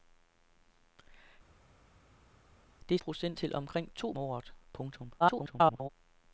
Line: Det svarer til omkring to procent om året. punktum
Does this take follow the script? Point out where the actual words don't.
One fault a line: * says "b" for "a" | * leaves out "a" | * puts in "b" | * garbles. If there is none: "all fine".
* says "procent" for "svarer"
* leaves out "procent om"
* garbles